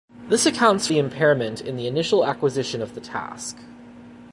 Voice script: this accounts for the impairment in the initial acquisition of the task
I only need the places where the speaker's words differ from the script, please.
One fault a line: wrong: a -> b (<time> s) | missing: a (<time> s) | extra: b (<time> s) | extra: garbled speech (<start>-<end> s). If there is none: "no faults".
missing: for (0.9 s)